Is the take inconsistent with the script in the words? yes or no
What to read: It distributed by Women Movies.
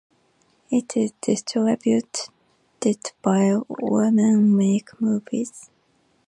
yes